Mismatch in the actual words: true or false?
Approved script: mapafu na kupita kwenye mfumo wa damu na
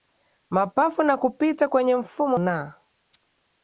true